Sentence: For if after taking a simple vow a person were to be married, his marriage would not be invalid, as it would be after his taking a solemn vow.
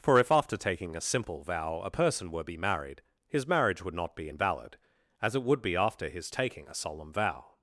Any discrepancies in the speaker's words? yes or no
yes